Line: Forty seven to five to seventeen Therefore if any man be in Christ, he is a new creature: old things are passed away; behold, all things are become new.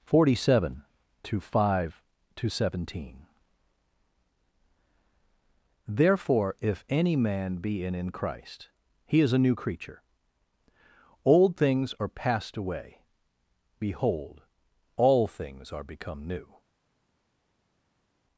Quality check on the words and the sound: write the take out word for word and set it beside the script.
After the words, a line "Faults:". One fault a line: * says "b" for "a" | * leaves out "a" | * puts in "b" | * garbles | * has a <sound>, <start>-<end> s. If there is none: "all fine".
Forty seven to five to seventeen Therefore if any man be in in Christ, he is a new creature: old things are passed away; behold, all things are become new.
Faults:
* puts in "in"